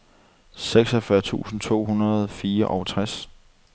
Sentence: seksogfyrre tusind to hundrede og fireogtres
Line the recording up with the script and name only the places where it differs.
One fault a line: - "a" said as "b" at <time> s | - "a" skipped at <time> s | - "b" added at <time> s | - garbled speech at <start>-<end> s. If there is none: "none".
none